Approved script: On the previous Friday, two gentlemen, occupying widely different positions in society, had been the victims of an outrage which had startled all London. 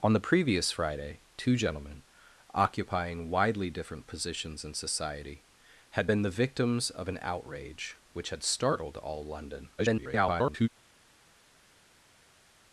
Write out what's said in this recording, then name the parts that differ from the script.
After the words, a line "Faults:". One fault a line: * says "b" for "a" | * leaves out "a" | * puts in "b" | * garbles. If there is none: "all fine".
On the previous Friday, two gentlemen, occupying widely different positions in society, had been the victims of an outrage which had startled all London. [garbled]
Faults:
* garbles